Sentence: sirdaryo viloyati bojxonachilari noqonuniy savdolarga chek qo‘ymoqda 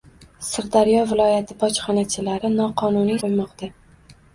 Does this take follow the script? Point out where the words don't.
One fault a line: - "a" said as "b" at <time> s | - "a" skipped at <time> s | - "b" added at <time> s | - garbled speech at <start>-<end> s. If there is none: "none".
- "savdolarga chek" skipped at 3.2 s